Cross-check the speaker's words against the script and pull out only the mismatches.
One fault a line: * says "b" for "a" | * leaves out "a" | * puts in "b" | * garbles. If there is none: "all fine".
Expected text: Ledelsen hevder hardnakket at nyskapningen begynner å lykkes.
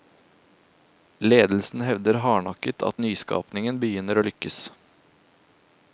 all fine